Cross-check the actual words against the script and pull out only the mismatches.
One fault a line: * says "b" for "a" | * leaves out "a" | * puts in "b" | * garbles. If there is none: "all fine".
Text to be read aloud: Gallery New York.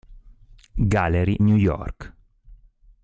all fine